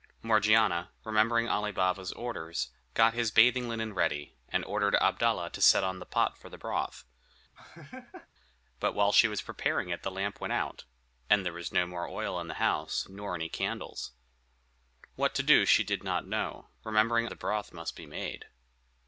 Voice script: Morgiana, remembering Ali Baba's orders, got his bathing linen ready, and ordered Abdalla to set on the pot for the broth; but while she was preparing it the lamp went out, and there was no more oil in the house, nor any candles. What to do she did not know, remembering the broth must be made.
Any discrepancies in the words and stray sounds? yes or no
yes